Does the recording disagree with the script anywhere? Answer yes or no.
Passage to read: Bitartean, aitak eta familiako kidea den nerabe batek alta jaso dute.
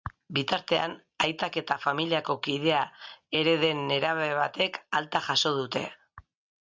yes